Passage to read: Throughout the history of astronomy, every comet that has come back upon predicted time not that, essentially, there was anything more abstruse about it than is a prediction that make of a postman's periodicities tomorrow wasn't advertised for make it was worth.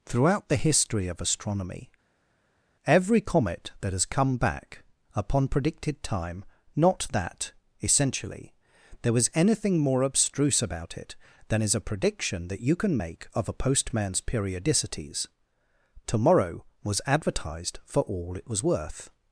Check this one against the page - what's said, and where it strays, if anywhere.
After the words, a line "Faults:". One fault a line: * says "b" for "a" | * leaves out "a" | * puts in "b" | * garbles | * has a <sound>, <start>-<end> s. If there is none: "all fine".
Throughout the history of astronomy, every comet that has come back upon predicted time not that, essentially, there was anything more abstruse about it than is a prediction that you can make of a postman's periodicities tomorrow was advertised for all it was worth.
Faults:
* puts in "you can"
* says "was" for "wasn't"
* says "all" for "make"